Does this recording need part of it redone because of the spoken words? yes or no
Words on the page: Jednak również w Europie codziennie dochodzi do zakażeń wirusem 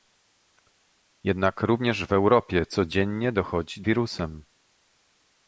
yes